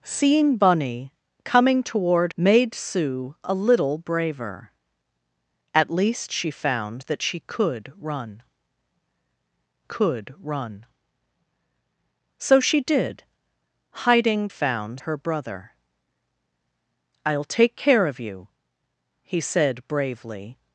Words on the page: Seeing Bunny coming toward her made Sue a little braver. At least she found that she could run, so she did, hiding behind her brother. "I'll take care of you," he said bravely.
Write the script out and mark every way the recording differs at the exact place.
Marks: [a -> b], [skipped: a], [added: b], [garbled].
Seeing Bunny coming toward [skipped: her] made Sue a little braver. At least she found that she could run, [added: could run] so she did, hiding [behind -> found] her brother. "I'll take care of you," he said bravely.